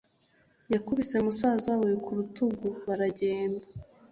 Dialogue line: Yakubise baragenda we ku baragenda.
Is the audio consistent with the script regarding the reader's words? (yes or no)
no